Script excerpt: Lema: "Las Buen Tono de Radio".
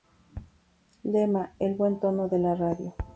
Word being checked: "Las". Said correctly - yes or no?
no